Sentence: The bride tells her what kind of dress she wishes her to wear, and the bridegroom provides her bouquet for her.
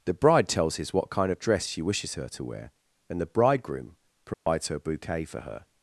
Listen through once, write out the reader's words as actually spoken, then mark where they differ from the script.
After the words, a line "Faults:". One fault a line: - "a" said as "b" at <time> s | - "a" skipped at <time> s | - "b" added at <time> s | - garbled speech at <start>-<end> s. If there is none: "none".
The bride tells his what kind of dress she wishes her to wear, and the bridegroom provides her bouquet for her.
Faults:
- "her" said as "his" at 0.8 s